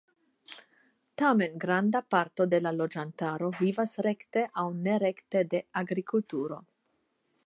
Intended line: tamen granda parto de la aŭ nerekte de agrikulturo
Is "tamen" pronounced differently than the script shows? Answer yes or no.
no